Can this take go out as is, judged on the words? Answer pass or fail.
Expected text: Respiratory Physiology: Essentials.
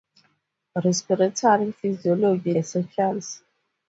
pass